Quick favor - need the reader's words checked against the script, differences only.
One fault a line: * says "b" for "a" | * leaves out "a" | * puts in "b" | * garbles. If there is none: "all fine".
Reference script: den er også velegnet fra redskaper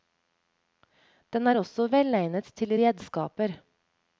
* says "til" for "fra"